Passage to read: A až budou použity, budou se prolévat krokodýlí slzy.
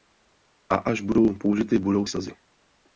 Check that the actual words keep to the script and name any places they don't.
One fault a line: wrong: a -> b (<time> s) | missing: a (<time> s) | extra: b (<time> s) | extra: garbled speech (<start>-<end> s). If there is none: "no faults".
missing: se prolévat krokodýlí (2.1 s)